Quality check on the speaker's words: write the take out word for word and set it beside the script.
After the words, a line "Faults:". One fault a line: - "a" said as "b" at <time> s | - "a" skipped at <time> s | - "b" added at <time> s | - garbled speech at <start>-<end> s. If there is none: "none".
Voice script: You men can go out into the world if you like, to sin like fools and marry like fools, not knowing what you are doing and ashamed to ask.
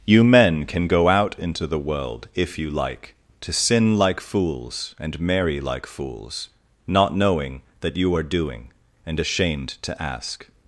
You men can go out into the world if you like, to sin like fools and marry like fools, not knowing that you are doing and ashamed to ask.
Faults:
- "what" said as "that" at 7.8 s